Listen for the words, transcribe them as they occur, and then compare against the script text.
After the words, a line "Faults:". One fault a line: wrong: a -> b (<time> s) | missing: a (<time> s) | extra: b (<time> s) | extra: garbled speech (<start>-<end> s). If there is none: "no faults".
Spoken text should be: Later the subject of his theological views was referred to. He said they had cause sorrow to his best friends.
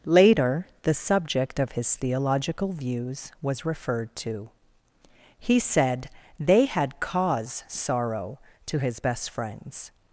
Later the subject of his theological views was referred to. He said they had cause sorrow to his best friends.
Faults:
no faults